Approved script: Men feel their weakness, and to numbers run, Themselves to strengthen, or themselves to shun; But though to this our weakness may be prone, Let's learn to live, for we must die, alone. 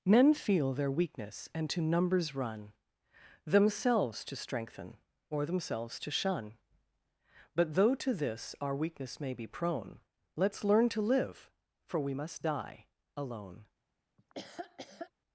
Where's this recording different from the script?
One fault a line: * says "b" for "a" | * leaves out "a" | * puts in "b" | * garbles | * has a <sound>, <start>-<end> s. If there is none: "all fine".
* has a laugh, 14.2-15.1 s